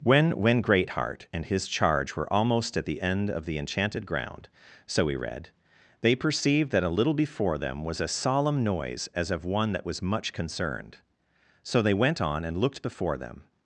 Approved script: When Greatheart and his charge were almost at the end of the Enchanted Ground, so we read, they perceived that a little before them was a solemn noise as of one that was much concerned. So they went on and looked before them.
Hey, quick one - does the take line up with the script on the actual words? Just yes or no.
no